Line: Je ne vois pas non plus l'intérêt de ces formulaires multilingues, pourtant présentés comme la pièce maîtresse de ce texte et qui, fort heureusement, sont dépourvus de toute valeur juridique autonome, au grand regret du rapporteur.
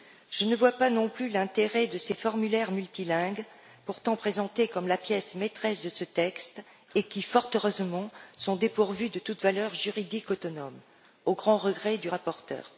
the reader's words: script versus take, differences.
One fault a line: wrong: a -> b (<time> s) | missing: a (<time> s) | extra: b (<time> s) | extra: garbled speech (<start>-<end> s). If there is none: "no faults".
no faults